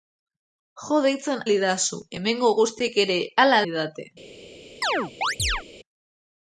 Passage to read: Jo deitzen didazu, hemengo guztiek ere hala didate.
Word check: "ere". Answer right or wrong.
right